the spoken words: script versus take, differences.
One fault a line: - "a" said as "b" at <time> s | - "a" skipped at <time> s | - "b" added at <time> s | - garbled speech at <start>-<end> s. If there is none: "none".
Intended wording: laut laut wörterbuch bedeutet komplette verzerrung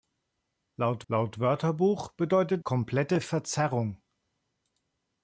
none